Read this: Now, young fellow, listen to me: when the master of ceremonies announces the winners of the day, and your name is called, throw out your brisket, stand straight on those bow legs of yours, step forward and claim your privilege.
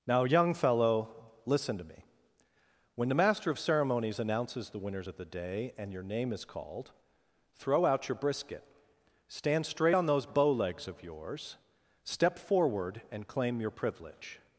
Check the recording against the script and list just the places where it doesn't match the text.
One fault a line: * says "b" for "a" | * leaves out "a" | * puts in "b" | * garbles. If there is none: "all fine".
all fine